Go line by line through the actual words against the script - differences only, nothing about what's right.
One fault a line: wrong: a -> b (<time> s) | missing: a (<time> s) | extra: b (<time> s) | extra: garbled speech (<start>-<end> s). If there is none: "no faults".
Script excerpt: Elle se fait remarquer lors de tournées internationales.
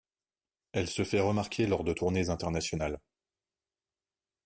no faults